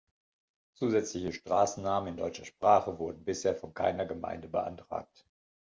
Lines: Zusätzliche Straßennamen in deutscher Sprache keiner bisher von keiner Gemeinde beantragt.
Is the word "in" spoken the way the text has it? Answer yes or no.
yes